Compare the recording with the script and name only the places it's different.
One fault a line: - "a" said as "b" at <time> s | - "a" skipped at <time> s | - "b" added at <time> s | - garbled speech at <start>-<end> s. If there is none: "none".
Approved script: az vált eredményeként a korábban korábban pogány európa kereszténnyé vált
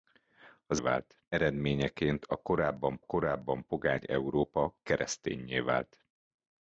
none